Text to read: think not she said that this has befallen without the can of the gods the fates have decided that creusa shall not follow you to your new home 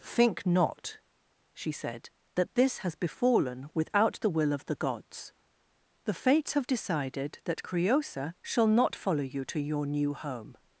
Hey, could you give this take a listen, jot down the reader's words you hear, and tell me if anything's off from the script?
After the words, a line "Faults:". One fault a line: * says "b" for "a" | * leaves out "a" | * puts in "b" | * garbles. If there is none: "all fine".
think not she said that this has befallen without the will of the gods the fates have decided that creusa shall not follow you to your new home
Faults:
* says "will" for "can"